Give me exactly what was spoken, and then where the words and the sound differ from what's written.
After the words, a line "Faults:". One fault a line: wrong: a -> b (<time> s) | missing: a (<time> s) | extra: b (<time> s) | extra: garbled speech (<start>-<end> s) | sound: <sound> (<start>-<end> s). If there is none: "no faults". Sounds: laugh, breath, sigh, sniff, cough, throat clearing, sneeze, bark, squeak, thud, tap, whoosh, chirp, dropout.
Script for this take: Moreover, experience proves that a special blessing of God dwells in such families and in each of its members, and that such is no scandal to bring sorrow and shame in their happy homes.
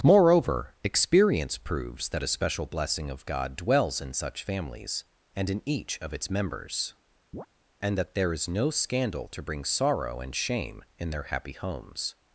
Moreover, experience proves that a special blessing of God dwells in such families and in each of its members, and that there is no scandal to bring sorrow and shame in their happy homes.
Faults:
sound: chirp (7.3-7.5 s)
wrong: such -> there (8.2 s)